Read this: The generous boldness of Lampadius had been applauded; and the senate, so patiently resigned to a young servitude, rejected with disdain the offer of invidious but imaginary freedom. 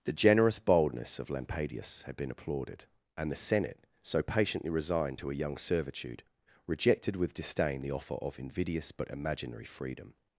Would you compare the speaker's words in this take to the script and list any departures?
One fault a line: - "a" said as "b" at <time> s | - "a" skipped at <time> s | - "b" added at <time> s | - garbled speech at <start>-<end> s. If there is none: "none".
none